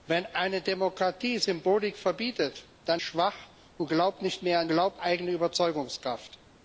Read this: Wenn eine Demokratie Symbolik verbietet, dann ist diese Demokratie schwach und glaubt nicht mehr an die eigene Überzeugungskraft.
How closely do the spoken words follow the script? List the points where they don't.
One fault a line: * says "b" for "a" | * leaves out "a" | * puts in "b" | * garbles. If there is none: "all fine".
* leaves out "ist diese Demokratie"
* says "glaubt" for "die"